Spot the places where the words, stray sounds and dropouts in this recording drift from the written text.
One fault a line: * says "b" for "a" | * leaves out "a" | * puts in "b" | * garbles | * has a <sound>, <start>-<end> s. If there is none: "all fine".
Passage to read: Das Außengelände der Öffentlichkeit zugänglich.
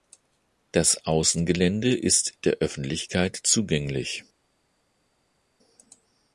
* puts in "ist"